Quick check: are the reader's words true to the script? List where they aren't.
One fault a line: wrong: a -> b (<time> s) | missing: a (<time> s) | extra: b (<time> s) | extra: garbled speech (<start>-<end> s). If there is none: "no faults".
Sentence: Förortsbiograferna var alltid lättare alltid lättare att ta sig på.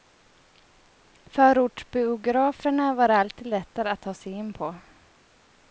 missing: alltid lättare (3.9 s)
extra: in (4.3 s)